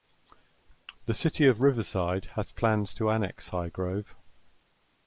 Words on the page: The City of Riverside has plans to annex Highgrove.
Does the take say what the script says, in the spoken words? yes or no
yes